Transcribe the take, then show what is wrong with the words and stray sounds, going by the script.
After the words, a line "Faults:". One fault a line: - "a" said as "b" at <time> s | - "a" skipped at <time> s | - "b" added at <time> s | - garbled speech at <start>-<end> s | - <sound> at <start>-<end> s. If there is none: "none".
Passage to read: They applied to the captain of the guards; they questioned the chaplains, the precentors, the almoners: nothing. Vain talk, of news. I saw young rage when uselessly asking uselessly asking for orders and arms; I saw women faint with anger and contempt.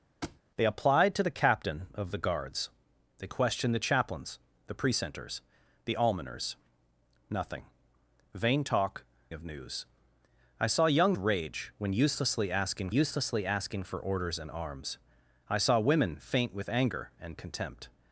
They applied to the captain of the guards; they questioned the chaplains, the precentors, the almoners: nothing. Vain talk, of news. I saw young rage when uselessly asking uselessly asking for orders and arms; I saw women faint with anger and contempt.
Faults:
- thud at 0.2-0.4 s